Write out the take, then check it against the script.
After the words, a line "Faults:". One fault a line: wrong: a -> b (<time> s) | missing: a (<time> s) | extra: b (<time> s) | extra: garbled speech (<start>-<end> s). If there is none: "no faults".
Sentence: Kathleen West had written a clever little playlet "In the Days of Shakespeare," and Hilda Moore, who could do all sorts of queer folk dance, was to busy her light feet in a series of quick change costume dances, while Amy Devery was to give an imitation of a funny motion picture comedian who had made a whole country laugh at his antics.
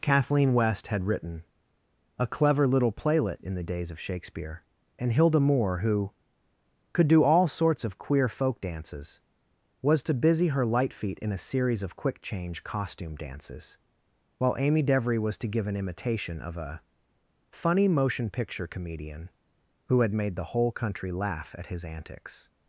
Kathleen West had written a clever little playlet "In the Days of Shakespeare," and Hilda Moore, who could do all sorts of queer folk dances, was to busy her light feet in a series of quick change costume dances, while Amy Devery was to give an imitation of a funny motion picture comedian who had made the whole country laugh at his antics.
Faults:
wrong: dance -> dances (8.6 s)
wrong: a -> the (20.4 s)